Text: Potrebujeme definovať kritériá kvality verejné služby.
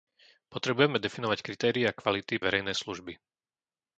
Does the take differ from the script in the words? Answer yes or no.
no